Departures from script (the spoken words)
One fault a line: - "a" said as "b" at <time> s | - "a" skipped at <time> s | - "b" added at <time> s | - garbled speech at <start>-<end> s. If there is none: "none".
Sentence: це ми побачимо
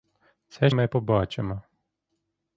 none